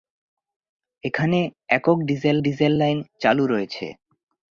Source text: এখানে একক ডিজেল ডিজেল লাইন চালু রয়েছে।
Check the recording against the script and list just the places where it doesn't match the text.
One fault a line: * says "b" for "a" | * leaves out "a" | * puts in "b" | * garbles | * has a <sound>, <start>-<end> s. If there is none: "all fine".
all fine